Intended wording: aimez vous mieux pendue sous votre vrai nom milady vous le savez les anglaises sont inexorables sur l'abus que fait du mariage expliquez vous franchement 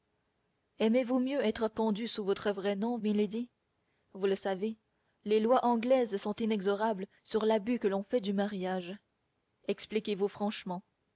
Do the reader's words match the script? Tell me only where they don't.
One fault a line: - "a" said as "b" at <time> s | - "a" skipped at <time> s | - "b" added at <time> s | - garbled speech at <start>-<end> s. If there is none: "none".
- "être" added at 1.4 s
- "lois" added at 5.4 s
- "l'on" added at 7.9 s